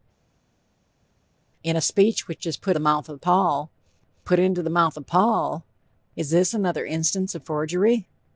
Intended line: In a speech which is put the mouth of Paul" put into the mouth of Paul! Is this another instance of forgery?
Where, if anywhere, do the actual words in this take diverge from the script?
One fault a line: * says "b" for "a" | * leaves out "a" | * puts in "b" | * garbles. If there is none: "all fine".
all fine